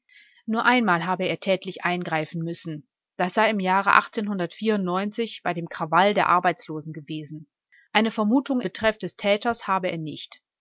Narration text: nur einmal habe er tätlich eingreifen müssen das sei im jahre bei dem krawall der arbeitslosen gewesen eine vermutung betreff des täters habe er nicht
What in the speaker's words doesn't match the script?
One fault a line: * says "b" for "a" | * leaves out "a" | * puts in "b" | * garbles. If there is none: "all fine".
all fine